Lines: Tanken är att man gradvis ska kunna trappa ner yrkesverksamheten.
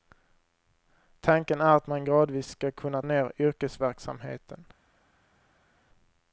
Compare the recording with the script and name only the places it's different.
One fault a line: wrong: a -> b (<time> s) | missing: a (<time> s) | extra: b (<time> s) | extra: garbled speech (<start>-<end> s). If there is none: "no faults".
missing: trappa (3.0 s)